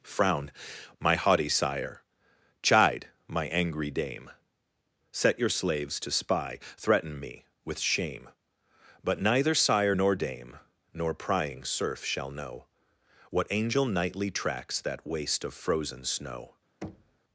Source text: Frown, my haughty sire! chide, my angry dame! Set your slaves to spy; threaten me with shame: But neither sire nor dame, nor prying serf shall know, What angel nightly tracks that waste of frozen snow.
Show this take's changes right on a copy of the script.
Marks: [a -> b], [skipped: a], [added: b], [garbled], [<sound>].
Frown, my haughty sire! chide, my angry dame! Set your slaves to spy; threaten me with shame: But neither sire nor dame, nor prying serf shall know, What angel nightly tracks that waste of frozen snow. [thud]